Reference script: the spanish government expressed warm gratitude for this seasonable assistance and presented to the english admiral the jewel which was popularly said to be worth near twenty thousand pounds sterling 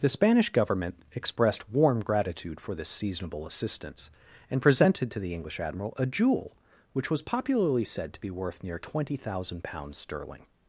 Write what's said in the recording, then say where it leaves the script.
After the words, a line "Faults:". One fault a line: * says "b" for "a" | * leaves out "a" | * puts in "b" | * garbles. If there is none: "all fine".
the spanish government expressed warm gratitude for this seasonable assistance and presented to the english admiral a jewel which was popularly said to be worth near twenty thousand pounds sterling
Faults:
* says "a" for "the"